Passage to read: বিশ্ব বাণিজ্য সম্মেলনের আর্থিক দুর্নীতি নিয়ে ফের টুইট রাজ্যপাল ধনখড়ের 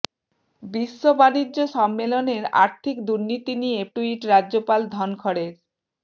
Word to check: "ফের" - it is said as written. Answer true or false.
false